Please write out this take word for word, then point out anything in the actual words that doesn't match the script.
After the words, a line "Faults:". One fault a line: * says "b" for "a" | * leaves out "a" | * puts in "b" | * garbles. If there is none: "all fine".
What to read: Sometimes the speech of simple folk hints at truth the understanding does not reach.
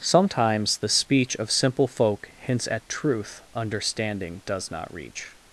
Sometimes the speech of simple folk hints at truth understanding does not reach.
Faults:
* leaves out "the"